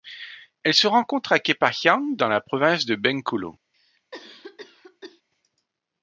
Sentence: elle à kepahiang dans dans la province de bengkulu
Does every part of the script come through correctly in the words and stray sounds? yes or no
no